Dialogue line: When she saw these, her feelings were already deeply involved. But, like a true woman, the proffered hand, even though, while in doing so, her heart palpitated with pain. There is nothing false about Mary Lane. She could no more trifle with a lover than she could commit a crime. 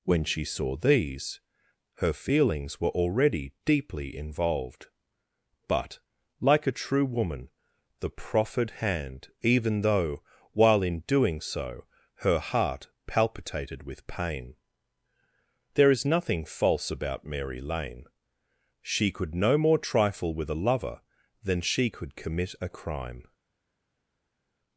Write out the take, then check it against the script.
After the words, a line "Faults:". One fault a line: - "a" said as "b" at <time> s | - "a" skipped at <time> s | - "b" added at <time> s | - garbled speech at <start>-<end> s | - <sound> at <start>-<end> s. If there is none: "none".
When she saw these, her feelings were already deeply involved. But, like a true woman, the proffered hand, even though, while in doing so, her heart palpitated with pain. There is nothing false about Mary Lane. She could no more trifle with a lover than she could commit a crime.
Faults:
none